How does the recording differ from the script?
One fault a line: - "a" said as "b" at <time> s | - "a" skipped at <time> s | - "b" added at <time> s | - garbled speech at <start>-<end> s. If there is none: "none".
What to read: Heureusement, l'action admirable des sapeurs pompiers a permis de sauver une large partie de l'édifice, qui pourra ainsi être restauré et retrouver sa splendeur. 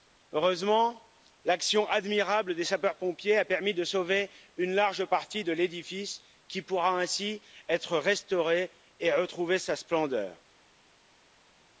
none